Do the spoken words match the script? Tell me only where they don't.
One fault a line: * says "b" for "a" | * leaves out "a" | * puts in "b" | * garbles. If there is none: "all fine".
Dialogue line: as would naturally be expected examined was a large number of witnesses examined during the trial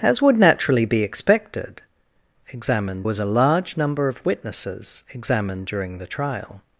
all fine